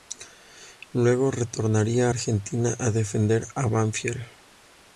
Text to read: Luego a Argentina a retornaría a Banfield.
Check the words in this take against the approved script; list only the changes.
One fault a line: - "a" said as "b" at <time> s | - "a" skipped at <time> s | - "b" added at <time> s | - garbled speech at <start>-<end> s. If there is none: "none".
- "retornaría" added at 1.3 s
- "retornaría" said as "defender" at 2.9 s